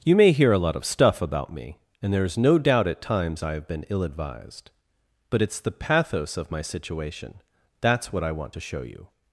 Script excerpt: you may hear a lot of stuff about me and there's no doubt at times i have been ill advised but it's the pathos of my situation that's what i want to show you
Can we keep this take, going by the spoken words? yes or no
yes